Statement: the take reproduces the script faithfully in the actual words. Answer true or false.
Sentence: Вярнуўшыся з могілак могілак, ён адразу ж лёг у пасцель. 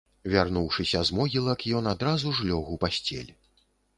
false